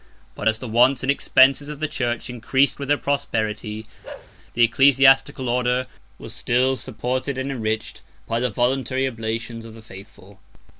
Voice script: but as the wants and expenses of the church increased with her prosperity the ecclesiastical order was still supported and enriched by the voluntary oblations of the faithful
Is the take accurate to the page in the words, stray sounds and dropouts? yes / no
no